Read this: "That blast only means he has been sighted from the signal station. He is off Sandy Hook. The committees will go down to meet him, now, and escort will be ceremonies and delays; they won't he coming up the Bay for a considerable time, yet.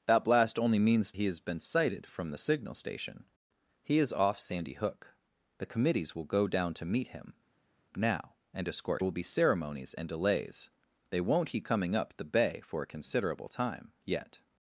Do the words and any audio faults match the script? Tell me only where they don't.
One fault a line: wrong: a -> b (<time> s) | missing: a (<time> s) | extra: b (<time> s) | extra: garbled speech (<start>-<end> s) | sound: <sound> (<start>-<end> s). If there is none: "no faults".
no faults